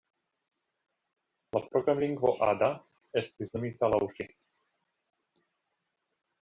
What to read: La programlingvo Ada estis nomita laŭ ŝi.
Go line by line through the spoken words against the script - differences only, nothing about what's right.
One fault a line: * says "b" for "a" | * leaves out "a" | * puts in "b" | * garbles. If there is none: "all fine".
all fine